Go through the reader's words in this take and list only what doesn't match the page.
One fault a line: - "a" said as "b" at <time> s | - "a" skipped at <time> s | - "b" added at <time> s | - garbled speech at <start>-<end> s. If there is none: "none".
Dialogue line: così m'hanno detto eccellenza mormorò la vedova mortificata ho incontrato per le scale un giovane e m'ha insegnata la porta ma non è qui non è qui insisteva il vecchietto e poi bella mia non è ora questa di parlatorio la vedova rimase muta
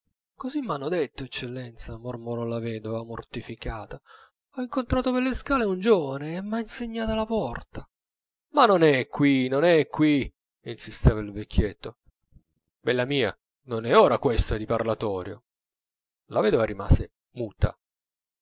- "e poi" skipped at 12.0 s